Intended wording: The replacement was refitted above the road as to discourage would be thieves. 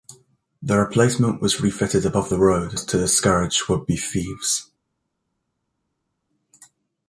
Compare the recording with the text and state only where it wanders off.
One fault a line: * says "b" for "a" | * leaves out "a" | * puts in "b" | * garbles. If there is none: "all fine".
all fine